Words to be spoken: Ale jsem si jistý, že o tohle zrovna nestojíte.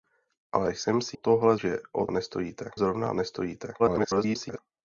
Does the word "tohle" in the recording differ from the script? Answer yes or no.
yes